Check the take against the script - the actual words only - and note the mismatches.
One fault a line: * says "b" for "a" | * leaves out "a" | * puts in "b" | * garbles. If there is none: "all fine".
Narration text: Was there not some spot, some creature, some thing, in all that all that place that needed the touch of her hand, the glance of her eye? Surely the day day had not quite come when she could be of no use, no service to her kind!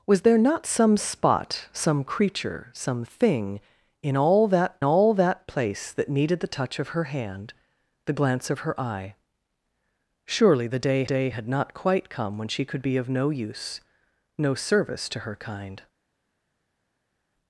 all fine